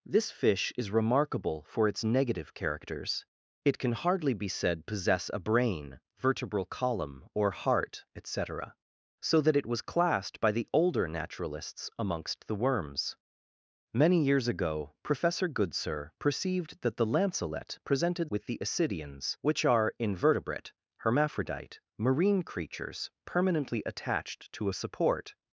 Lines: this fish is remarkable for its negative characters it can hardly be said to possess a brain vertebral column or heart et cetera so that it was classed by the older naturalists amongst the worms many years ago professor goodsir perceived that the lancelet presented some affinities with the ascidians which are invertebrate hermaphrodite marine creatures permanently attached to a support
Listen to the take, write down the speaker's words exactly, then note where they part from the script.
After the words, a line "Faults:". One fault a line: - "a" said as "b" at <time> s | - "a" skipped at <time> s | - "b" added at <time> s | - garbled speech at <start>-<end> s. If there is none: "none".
this fish is remarkable for its negative characters it can hardly be said possess a brain vertebral column or heart et cetera so that it was classed by the older naturalists amongst the worms many years ago professor goodsir perceived that the lancelet presented with the ascidians which are invertebrate hermaphrodite marine creatures permanently attached to a support
Faults:
- "to" skipped at 4.9 s
- "some affinities" skipped at 18.3 s